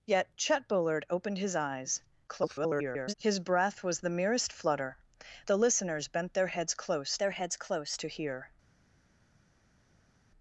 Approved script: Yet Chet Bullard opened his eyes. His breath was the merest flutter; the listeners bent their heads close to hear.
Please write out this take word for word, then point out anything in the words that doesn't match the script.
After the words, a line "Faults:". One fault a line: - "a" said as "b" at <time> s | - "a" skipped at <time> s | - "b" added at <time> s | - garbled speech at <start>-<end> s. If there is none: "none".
Yet Chet Bullard opened his eyes. [garbled] His breath was the merest flutter; the listeners bent their heads close their heads close to hear.
Faults:
- garbled speech at 2.3-3.1 s
- "their heads close" added at 7.2 s